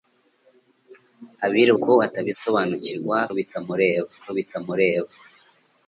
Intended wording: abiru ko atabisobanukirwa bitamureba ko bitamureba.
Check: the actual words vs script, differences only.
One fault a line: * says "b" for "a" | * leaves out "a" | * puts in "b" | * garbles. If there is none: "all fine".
all fine